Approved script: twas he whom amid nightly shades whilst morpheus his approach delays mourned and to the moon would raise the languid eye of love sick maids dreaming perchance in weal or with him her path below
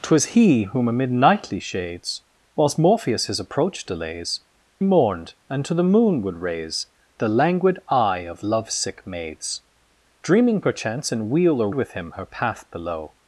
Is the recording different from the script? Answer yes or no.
no